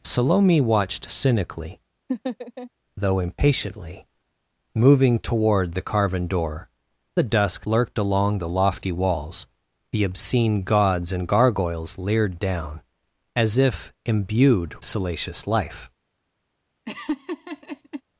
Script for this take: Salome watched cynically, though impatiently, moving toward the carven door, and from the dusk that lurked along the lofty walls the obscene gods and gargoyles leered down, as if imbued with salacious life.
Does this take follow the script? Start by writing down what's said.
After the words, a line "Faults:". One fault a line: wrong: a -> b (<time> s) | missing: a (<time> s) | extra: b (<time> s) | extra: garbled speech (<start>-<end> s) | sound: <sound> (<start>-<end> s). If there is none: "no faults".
Salome watched cynically, though impatiently, moving toward the carven door, the dusk lurked along the lofty walls the obscene gods and gargoyles leered down, as if imbued salacious life.
Faults:
sound: laugh (2.1-2.7 s)
missing: and from (6.7 s)
missing: that (7.7 s)
missing: with (14.8 s)
sound: laugh (16.9-18.0 s)